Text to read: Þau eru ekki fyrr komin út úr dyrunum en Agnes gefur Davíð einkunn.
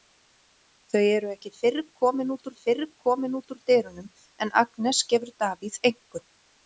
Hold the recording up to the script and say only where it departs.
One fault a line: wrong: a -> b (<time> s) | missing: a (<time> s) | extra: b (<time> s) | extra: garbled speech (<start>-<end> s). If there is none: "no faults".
extra: fyrr komin út (2.6 s)